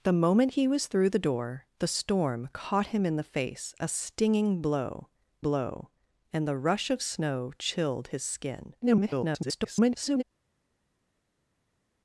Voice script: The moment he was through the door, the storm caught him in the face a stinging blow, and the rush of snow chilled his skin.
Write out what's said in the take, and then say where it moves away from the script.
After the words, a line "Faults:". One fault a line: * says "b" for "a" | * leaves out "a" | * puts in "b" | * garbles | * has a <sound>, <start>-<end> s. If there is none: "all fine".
The moment he was through the door, the storm caught him in the face a stinging blow blow, and the rush of snow chilled his skin. [garbled]
Faults:
* puts in "blow"
* garbles